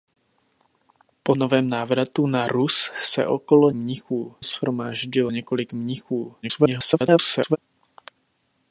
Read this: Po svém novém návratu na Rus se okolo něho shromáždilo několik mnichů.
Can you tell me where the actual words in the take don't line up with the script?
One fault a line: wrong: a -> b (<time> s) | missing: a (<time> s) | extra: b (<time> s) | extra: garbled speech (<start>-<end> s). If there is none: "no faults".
missing: svém (1.4 s)
wrong: něho -> mnichů (3.7 s)
extra: garbled speech (6.4-7.6 s)